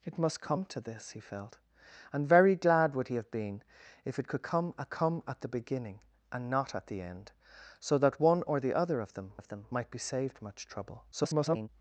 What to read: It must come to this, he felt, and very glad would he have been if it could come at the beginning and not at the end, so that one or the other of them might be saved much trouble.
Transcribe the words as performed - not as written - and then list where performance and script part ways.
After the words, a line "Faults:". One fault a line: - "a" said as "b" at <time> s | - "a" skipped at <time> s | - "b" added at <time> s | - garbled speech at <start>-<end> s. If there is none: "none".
It must come to this, he felt, and very glad would he have been if it could come at come at the beginning and not at the end, so that one or the other of them of them might be saved much trouble. [garbled]
Faults:
- "come at" added at 4.9 s
- "of them" added at 9.4 s
- garbled speech at 11.1-11.7 s